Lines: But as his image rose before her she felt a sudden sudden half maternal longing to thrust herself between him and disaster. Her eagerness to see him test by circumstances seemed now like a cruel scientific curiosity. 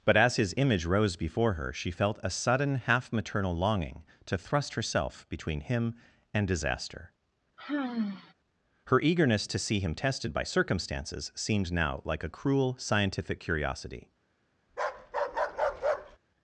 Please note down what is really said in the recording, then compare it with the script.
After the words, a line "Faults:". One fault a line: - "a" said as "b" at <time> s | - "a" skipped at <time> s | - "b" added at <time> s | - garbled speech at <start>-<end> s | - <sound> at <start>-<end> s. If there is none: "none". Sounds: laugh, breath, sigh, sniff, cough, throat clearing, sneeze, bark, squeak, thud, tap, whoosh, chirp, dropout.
But as his image rose before her she felt a sudden half maternal longing to thrust herself between him and disaster. Her eagerness to see him tested by circumstances seemed now like a cruel scientific curiosity.
Faults:
- "sudden" skipped at 2.8 s
- sigh at 7.6-8.3 s
- "test" said as "tested" at 9.9 s
- bark at 14.7-16.2 s